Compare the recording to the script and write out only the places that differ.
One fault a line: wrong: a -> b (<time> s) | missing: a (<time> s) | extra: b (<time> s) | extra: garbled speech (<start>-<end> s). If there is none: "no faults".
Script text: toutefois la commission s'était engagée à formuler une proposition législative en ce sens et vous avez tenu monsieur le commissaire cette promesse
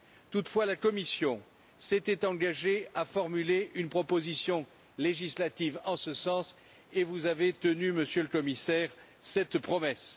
no faults